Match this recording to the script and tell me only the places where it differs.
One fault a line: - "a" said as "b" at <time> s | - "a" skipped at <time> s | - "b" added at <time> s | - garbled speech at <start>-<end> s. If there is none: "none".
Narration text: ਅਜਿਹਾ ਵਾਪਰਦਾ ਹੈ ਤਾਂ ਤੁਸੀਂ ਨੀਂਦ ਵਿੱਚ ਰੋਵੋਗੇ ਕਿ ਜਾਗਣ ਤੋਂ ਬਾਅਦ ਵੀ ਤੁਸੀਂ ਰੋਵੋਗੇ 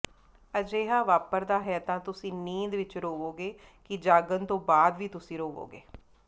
none